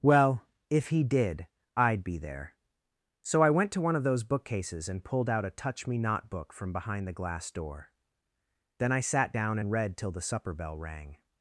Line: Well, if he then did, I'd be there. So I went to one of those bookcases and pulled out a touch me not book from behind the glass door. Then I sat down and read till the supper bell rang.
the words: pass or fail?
fail